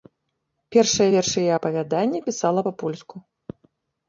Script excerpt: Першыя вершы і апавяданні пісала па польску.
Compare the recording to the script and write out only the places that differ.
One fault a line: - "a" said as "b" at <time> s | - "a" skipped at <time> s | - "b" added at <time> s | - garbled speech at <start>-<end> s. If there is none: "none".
none